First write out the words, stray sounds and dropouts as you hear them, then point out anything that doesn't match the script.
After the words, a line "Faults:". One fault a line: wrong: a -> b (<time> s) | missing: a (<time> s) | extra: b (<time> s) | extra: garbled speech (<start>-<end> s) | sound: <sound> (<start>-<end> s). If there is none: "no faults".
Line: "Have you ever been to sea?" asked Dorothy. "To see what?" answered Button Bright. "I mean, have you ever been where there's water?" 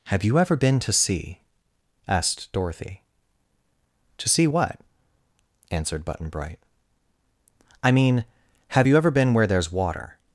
"Have you ever been to sea?" asked Dorothy. "To see what?" answered Button Bright. "I mean, have you ever been where there's water?"
Faults:
no faults